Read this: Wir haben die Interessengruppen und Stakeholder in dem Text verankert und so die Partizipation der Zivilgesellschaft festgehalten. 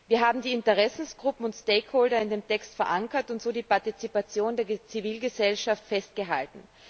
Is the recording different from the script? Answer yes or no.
no